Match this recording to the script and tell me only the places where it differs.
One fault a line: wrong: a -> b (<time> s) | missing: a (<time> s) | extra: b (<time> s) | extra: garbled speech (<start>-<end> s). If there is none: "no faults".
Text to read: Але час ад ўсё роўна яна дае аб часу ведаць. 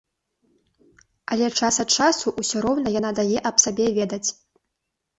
extra: часу (2.0 s)
wrong: часу -> сабе (3.7 s)